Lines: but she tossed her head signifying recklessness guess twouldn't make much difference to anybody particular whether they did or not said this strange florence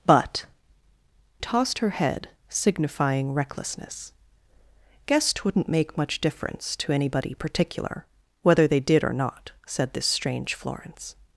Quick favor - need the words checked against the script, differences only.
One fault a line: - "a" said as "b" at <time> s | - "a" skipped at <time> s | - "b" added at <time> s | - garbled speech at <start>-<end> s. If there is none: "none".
- "she" skipped at 0.5 s